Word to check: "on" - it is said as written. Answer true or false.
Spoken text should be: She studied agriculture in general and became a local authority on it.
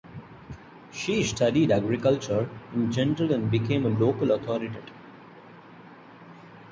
false